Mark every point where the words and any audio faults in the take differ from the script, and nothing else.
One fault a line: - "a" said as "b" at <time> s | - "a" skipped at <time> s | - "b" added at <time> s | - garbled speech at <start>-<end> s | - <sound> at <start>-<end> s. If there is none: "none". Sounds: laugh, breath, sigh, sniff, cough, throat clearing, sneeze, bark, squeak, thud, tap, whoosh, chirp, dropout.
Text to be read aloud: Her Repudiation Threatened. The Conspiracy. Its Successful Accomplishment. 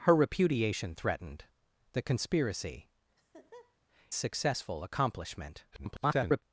- "Its" skipped at 2.9 s
- laugh at 3.2-3.8 s
- garbled speech at 5.7-6.4 s